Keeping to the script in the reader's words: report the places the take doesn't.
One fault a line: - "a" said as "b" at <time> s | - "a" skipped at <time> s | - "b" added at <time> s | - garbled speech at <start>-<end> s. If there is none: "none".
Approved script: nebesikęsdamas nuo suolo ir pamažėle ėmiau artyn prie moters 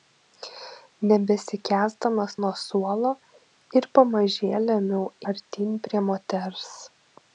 none